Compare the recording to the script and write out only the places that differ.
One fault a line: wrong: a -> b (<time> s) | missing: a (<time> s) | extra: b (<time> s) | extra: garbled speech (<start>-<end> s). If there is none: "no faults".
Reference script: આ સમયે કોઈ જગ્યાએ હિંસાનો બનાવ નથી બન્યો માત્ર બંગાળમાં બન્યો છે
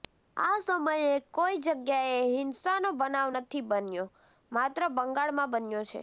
no faults